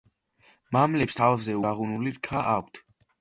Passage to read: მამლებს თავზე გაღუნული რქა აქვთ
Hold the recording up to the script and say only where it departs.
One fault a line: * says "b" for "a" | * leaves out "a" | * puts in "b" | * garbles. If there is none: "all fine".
all fine